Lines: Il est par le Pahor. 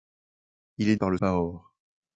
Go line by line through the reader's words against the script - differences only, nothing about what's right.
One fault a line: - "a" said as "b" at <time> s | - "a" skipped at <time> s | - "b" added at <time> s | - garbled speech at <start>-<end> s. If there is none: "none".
none